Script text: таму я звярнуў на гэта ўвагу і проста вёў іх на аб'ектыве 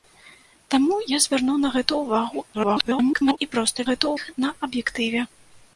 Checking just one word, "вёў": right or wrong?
wrong